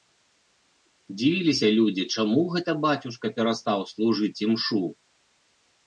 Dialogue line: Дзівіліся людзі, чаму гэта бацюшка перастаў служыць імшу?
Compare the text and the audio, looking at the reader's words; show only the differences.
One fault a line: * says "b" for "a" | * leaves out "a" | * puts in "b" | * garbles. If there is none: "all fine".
all fine